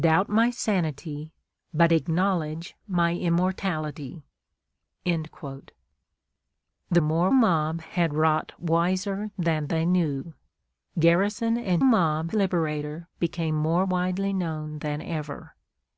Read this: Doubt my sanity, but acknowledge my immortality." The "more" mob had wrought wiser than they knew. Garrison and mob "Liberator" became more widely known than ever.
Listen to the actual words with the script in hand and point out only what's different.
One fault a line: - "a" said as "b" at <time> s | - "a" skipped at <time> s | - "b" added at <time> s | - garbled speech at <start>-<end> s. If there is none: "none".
none